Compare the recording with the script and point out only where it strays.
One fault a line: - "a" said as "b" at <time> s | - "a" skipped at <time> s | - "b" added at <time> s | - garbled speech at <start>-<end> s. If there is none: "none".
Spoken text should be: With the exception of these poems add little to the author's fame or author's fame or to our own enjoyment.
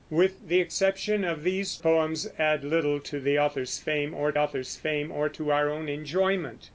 none